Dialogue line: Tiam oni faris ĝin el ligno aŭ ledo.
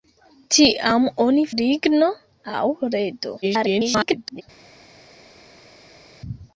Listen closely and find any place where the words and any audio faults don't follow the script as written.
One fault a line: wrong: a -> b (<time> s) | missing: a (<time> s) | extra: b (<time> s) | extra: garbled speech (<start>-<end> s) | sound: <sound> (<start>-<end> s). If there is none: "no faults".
missing: faris ĝin el (1.4 s)
extra: garbled speech (3.4-4.4 s)